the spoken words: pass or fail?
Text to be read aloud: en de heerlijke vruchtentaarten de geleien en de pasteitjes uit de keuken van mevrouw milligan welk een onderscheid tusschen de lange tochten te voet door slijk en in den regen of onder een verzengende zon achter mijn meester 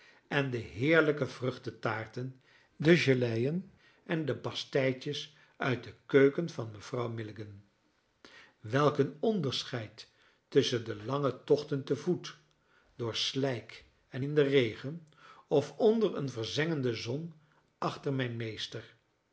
pass